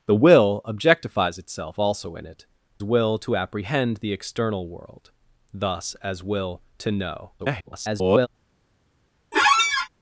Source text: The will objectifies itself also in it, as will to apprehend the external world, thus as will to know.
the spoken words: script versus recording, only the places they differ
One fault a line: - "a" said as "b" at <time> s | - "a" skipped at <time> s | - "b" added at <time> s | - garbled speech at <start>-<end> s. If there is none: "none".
- "as" skipped at 2.5 s
- garbled speech at 7.4-8.3 s